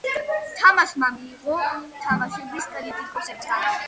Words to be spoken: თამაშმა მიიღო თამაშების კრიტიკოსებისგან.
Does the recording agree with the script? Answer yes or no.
yes